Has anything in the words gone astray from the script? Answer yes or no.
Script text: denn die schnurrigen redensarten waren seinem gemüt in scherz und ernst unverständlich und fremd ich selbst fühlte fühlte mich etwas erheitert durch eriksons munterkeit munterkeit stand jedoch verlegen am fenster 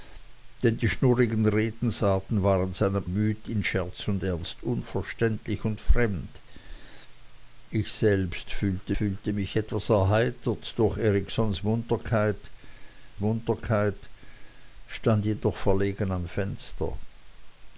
no